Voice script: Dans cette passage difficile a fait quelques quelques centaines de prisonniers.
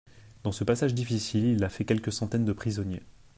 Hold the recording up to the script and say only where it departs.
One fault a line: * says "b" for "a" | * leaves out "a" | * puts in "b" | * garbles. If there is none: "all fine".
* says "ce" for "cette"
* puts in "il"
* leaves out "quelques"